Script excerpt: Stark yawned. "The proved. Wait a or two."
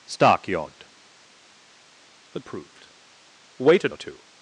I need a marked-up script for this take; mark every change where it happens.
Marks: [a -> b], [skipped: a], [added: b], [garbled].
Stark yawned. "The proved. Wait a or two."